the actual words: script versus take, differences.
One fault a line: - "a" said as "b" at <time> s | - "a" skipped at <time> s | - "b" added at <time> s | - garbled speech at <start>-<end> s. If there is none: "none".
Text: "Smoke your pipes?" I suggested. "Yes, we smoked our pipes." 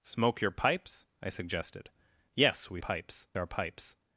- "smoked" said as "pipes" at 2.8 s